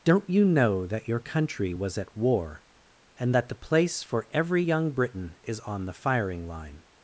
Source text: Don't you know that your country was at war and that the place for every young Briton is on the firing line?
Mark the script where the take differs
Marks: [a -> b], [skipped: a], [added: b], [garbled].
Don't you know that your country was at war and that the place for every young Briton is on the firing line?